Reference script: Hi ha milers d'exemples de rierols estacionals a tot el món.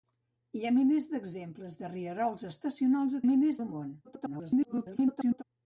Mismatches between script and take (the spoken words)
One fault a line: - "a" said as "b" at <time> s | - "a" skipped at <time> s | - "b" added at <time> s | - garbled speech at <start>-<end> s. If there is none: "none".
- "tot" said as "milers" at 3.3 s
- garbled speech at 4.0-5.4 s